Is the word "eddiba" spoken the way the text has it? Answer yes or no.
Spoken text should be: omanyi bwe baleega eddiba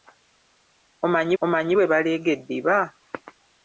yes